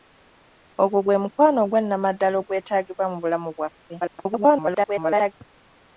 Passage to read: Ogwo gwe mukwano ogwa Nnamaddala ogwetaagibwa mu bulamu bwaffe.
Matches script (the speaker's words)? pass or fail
fail